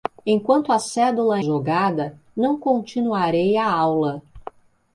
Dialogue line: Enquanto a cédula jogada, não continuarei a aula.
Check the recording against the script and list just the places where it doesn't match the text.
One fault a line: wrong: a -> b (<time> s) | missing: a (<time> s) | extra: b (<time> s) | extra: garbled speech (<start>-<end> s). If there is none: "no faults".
no faults